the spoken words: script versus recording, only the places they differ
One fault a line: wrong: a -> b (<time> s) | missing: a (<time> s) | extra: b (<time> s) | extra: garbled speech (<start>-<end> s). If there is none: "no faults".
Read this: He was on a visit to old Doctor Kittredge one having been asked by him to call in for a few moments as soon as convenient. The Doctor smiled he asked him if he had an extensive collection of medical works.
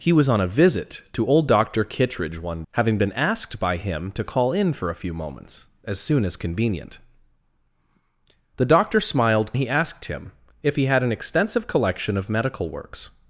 no faults